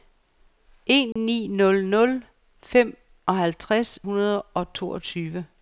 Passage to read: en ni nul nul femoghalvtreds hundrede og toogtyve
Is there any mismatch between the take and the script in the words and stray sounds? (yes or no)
yes